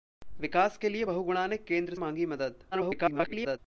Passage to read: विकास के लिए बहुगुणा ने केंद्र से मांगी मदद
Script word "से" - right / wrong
wrong